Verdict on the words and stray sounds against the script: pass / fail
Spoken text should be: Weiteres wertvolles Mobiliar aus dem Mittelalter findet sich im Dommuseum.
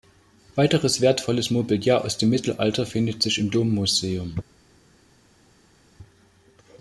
pass